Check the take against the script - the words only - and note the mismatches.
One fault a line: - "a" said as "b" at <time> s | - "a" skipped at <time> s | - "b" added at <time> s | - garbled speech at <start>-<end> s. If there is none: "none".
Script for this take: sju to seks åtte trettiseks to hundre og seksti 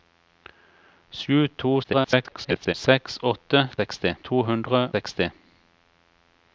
- garbled speech at 1.8-2.7 s
- "trettiseks" said as "seksti" at 3.8 s
- "og" skipped at 4.8 s